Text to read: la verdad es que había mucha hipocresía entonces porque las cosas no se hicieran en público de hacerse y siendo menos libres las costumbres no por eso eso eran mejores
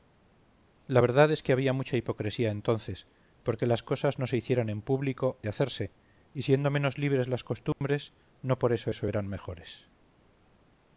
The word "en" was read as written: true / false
true